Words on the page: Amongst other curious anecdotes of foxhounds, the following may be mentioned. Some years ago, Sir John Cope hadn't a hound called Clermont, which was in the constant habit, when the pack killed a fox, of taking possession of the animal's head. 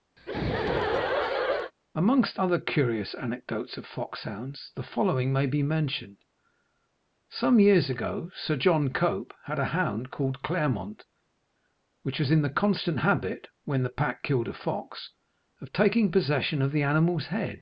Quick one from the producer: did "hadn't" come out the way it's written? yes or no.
no